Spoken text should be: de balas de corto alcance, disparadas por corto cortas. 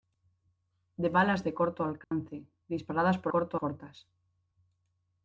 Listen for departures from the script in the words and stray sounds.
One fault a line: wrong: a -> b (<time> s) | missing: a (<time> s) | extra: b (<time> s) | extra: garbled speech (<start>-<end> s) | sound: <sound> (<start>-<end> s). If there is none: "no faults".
sound: dropout (2.0-2.1 s)